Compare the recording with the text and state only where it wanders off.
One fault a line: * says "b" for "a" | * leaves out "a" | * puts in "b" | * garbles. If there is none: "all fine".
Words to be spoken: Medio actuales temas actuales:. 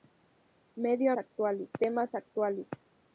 all fine